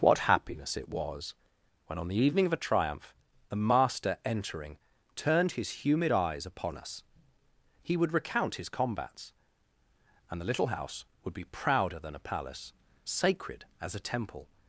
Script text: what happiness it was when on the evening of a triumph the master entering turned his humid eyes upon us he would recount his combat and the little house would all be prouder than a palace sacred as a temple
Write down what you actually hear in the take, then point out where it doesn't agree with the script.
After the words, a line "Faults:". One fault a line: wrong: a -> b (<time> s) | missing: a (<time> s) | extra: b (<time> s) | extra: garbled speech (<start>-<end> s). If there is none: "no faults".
what happiness it was when on the evening of a triumph the master entering turned his humid eyes upon us he would recount his combats and the little house would be prouder than a palace sacred as a temple
Faults:
wrong: combat -> combats (8.7 s)
missing: all (11.3 s)